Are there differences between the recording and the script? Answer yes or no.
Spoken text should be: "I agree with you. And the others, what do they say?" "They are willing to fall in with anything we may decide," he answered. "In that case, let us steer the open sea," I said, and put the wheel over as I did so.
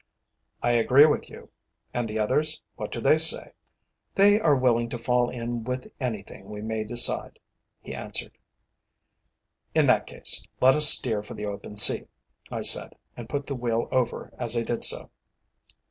yes